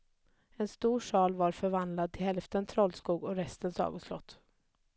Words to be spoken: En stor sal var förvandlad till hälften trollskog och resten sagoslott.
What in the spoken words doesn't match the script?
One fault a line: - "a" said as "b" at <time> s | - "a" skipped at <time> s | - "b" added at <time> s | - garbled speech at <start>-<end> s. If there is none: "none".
none